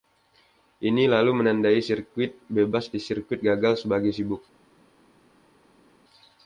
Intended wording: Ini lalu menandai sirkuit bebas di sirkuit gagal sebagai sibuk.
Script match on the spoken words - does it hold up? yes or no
yes